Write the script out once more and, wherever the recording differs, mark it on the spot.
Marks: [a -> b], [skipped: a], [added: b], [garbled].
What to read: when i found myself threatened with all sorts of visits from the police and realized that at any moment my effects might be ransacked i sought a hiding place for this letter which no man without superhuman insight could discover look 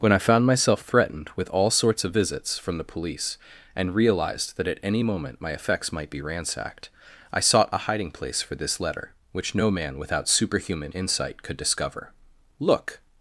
when i found myself threatened with all sorts of visits from the police and realized that at any moment my effects might be ransacked i sought a hiding place for this letter which no man without superhuman insight could discover look